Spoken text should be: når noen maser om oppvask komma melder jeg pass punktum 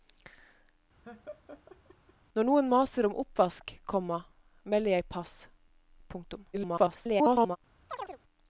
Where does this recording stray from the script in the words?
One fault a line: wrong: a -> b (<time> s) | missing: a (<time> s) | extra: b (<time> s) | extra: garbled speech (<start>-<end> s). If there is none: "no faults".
extra: garbled speech (6.5-7.6 s)